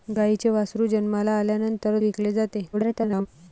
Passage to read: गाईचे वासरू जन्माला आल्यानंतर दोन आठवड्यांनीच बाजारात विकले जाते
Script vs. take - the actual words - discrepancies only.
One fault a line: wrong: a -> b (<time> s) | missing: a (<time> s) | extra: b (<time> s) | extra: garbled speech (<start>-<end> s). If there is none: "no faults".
missing: दोन आठवड्यांनीच बाजारात (2.0 s)
extra: garbled speech (2.7-3.3 s)